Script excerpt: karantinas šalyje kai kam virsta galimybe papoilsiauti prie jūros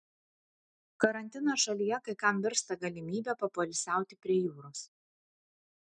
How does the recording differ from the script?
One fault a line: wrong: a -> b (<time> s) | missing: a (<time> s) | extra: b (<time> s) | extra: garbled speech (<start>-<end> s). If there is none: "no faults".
no faults